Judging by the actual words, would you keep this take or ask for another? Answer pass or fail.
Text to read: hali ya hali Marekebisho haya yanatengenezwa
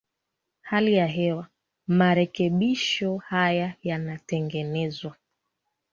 fail